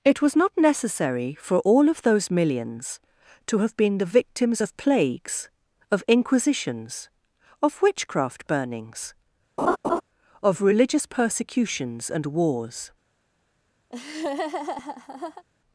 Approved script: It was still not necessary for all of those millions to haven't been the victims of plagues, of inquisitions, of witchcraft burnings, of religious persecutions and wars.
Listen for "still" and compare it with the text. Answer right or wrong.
wrong